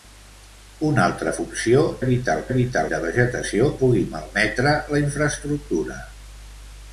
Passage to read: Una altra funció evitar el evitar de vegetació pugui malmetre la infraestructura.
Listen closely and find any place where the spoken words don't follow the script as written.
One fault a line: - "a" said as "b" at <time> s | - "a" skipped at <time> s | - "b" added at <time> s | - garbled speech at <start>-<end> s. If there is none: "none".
none